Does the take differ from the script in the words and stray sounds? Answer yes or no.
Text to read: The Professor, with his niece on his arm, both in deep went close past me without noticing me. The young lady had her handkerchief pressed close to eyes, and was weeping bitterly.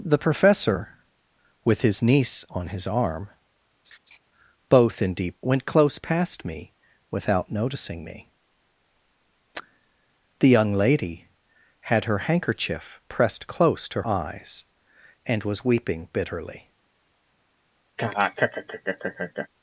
yes